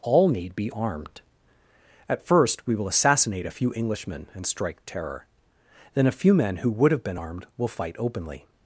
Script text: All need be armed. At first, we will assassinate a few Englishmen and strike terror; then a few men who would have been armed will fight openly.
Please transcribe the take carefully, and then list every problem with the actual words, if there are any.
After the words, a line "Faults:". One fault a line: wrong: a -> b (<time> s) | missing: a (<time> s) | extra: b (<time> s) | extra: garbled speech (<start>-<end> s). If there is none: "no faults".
All need be armed. At first, we will assassinate a few Englishmen and strike terror; then a few men who would have been armed will fight openly.
Faults:
no faults